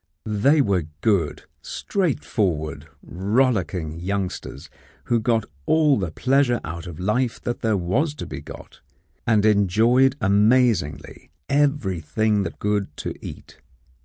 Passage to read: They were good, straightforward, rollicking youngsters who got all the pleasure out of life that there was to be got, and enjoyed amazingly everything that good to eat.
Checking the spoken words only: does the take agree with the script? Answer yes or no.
yes